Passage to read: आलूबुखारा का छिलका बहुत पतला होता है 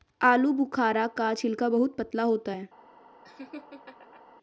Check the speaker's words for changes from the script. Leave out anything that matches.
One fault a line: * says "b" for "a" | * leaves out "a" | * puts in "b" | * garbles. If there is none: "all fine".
all fine